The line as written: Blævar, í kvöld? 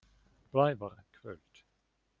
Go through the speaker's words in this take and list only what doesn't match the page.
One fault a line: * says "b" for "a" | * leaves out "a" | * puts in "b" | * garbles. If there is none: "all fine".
all fine